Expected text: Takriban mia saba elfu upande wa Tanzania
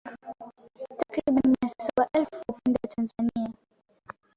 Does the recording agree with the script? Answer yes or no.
yes